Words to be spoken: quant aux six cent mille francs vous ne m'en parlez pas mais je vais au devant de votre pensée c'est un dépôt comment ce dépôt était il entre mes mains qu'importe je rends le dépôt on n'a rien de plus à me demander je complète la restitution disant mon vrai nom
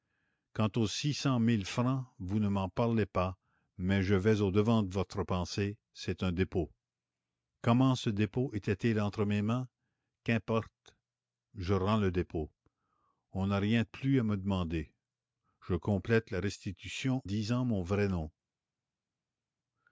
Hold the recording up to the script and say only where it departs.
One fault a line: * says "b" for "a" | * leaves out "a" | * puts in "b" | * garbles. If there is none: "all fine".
all fine